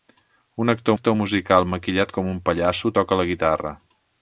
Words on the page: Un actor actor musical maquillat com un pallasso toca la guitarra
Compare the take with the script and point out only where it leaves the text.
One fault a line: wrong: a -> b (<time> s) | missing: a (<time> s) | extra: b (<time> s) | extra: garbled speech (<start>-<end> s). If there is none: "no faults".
no faults